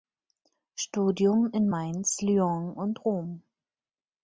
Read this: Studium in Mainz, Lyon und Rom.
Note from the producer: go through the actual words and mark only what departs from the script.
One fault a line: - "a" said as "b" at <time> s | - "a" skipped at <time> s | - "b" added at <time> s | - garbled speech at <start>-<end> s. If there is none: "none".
none